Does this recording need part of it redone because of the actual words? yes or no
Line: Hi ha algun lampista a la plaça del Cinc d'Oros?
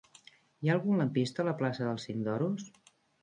no